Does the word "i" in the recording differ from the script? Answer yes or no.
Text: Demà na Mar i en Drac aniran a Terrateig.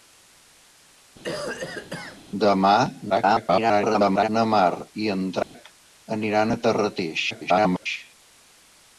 no